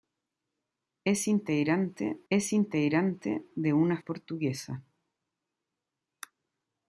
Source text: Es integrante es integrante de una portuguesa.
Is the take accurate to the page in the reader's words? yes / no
yes